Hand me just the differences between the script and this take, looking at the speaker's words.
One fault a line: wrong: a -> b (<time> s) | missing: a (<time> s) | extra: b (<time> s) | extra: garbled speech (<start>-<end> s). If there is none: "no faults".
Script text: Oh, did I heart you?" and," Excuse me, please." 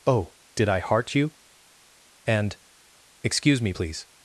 no faults